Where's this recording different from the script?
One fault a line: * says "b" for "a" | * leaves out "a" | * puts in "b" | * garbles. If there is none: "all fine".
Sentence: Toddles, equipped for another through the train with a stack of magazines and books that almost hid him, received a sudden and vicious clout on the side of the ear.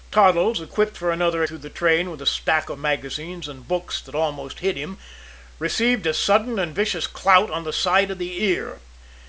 all fine